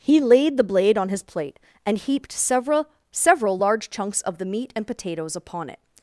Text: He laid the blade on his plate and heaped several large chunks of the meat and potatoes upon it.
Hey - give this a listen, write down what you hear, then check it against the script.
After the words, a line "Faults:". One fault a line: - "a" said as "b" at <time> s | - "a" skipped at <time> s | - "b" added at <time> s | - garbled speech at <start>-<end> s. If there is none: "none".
He laid the blade on his plate and heaped several several large chunks of the meat and potatoes upon it.
Faults:
- "several" added at 3.1 s